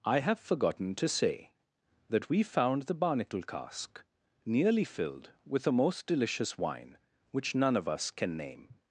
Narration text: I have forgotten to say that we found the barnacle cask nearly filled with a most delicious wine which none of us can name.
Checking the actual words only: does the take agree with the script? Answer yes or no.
yes